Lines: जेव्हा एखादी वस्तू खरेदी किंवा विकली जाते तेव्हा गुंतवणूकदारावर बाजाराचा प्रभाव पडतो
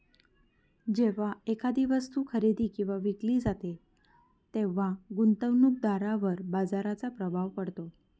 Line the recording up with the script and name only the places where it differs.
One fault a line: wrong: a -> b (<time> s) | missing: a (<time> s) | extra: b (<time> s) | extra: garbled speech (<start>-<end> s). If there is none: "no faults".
no faults